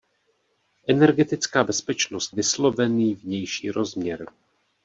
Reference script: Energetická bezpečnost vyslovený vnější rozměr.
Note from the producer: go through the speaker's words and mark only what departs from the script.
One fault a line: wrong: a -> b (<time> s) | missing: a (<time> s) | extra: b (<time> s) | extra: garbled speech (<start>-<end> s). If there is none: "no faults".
no faults